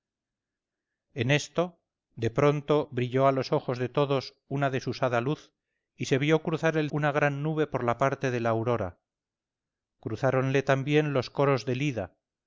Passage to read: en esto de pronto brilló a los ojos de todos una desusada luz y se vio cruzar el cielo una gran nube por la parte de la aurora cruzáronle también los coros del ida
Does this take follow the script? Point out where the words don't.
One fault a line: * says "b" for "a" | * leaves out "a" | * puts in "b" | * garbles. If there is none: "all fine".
* leaves out "cielo"